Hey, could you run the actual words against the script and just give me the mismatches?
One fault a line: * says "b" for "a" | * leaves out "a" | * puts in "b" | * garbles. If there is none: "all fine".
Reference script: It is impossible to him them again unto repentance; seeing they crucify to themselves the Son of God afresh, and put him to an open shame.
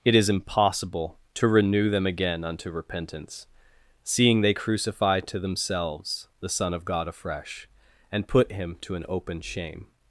* says "renew" for "him"